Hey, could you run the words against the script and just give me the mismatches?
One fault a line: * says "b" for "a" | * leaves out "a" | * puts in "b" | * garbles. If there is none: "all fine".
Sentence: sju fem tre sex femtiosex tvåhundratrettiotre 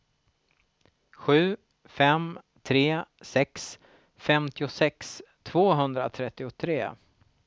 all fine